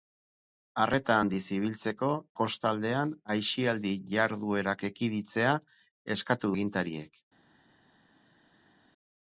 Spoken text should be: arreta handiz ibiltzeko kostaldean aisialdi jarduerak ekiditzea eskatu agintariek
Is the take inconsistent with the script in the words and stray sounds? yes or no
no